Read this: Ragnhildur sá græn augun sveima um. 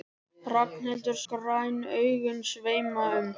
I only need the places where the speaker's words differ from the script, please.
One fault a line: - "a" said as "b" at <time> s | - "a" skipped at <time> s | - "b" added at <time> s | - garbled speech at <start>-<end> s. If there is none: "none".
- "sá" skipped at 1.2 s